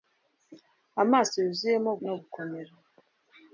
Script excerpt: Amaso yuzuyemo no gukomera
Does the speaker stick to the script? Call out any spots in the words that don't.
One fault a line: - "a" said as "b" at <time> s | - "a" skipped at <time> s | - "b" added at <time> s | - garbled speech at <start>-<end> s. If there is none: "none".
none